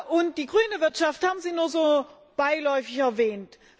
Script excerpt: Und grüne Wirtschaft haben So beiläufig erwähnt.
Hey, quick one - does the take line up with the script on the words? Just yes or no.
no